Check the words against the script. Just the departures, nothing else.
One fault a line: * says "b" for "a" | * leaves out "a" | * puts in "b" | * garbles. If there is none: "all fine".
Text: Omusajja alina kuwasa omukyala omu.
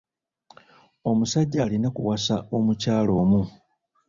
all fine